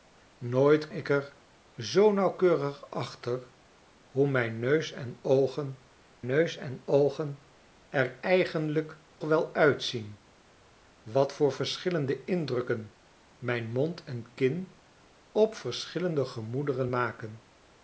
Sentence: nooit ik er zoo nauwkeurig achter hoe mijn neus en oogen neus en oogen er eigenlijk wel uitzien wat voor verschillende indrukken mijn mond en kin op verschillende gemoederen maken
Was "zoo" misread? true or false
false